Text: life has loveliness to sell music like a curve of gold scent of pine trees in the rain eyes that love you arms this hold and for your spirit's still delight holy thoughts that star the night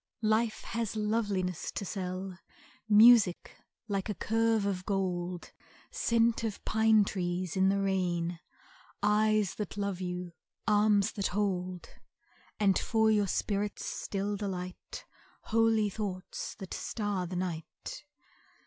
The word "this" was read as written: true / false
false